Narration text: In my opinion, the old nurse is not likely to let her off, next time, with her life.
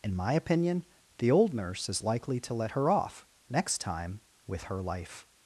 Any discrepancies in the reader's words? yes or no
yes